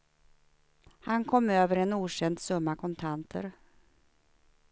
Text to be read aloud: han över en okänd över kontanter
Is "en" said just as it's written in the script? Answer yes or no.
yes